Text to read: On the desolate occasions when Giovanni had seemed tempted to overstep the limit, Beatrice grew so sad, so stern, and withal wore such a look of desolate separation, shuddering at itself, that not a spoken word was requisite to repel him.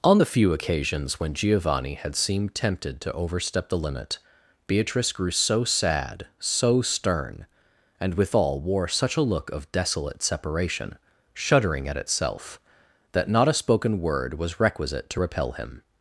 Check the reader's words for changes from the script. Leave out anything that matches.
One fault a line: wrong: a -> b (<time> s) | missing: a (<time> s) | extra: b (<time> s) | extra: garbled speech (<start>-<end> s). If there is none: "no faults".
wrong: desolate -> few (0.2 s)